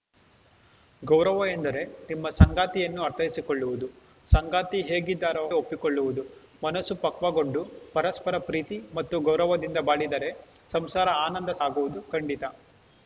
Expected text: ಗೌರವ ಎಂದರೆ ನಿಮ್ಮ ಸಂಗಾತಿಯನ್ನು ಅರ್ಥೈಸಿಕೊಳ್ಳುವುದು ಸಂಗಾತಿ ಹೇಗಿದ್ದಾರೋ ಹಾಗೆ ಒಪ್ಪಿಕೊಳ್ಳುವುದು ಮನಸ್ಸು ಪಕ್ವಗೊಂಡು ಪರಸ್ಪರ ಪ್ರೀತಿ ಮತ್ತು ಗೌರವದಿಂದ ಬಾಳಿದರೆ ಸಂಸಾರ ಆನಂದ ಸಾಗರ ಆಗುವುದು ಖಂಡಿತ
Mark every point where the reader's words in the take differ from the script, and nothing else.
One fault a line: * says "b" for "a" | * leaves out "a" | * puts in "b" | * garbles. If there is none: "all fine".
* leaves out "ಹಾಗೆ"
* leaves out "ಸಾಗರ"